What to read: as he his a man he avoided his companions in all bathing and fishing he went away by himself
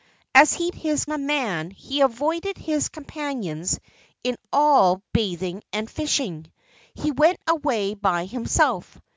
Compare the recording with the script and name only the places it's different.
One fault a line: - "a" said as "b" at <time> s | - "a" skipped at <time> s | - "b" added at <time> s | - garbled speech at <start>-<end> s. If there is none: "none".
none